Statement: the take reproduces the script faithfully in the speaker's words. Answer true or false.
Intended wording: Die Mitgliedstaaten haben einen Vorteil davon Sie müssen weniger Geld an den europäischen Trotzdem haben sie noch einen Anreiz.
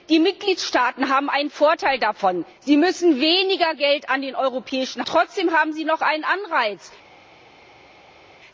true